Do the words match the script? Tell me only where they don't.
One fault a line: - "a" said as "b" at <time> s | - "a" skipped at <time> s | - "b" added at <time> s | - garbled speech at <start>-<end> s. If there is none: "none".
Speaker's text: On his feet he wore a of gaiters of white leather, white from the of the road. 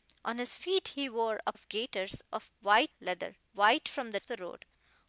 none